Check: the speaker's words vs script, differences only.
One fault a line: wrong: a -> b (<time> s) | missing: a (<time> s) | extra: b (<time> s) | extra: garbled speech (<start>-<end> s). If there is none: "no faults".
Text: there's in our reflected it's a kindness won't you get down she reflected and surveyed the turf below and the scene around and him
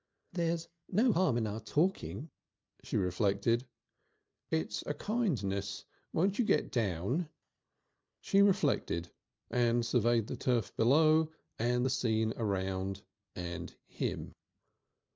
extra: no harm (0.9 s)
extra: talking she (1.6 s)